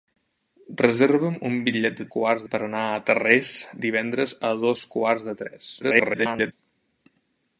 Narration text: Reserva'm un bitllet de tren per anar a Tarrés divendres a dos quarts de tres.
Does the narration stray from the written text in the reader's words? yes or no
yes